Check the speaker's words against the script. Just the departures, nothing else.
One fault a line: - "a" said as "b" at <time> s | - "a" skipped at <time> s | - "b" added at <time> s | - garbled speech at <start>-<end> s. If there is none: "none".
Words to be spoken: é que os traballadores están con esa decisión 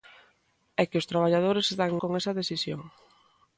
none